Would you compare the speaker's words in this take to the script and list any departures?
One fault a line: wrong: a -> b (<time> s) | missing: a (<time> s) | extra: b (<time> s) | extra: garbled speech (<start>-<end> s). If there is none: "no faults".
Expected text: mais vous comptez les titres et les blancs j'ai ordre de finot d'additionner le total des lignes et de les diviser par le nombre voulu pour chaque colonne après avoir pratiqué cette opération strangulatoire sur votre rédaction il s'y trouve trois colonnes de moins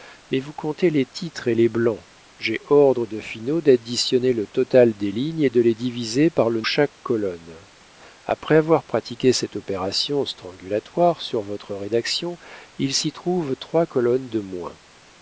missing: nombre voulu pour (6.6 s)